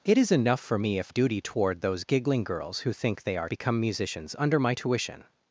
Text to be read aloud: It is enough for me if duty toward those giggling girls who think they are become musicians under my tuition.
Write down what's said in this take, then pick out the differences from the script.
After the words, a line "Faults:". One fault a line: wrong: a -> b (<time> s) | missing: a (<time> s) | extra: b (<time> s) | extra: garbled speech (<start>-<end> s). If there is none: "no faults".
It is enough for me if duty toward those giggling girls who think they are become musicians under my tuition.
Faults:
no faults